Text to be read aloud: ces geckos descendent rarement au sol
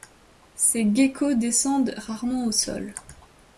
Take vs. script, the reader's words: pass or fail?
pass